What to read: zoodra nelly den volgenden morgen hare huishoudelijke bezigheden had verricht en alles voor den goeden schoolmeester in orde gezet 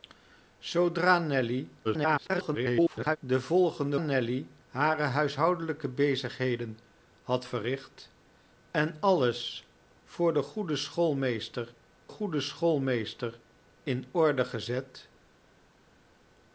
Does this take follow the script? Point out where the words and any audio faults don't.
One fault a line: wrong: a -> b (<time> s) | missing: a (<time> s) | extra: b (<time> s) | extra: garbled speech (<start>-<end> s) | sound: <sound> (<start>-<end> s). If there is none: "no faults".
extra: garbled speech (1.8-3.2 s)
wrong: morgen -> nelly (4.0 s)
extra: goeden schoolmeester (12.1 s)